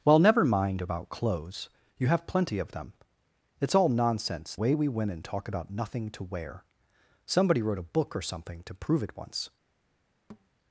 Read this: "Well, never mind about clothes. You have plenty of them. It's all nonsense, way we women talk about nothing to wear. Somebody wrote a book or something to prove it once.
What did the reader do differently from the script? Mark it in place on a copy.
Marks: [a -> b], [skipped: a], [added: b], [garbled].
"Well, never mind about clothes. You have plenty of them. It's all nonsense, way we women talk about nothing to wear. Somebody wrote a book or something to prove it once.